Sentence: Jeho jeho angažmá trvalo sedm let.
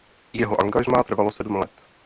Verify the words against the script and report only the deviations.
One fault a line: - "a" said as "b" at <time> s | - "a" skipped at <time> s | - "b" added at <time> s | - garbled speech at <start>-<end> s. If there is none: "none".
- "jeho" skipped at 0.6 s